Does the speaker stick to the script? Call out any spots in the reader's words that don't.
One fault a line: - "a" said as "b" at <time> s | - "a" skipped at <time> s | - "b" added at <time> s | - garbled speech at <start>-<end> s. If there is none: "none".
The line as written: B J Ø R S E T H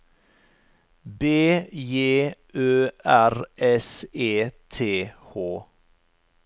none